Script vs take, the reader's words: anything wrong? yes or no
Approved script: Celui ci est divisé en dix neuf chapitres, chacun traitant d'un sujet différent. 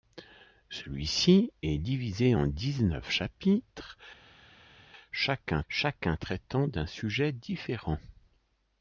yes